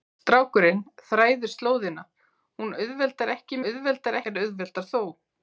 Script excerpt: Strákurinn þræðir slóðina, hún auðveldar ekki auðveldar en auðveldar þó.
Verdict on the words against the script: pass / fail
pass